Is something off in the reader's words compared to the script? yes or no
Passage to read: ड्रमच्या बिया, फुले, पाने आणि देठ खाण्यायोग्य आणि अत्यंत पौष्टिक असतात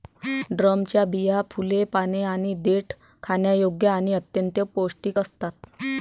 no